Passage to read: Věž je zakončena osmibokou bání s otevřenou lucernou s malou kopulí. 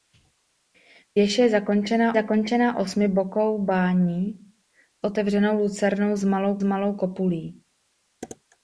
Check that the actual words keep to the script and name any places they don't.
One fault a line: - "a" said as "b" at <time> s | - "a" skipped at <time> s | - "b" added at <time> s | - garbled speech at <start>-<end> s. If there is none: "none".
- "zakončena" added at 2.1 s
- "s" skipped at 4.5 s
- "malou" added at 6.6 s